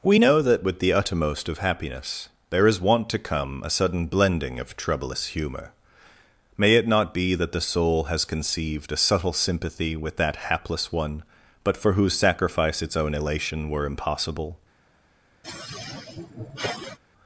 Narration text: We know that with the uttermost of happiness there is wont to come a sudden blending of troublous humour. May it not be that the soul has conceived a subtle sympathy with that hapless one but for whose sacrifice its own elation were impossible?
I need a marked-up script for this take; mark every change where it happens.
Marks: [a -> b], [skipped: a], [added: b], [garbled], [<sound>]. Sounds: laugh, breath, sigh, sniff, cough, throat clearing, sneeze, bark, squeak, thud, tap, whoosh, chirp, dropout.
We know that with the uttermost of happiness there is wont to come a sudden blending of troublous humour. May it not be that the soul has conceived a subtle sympathy with that hapless one but for whose sacrifice its own elation were impossible? [sigh]